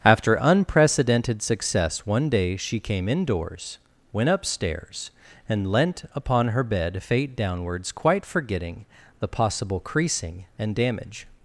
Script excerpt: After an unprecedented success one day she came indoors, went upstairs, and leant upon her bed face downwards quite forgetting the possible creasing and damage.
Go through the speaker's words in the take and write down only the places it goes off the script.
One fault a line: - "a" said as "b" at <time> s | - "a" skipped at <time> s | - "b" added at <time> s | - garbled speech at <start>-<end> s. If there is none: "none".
- "an" skipped at 0.3 s
- "face" said as "fate" at 7.0 s